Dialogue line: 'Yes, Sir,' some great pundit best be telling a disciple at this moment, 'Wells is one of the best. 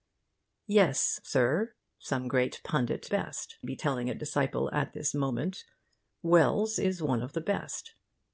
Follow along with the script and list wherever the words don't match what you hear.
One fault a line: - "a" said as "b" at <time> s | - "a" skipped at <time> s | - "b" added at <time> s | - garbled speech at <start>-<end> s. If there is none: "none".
none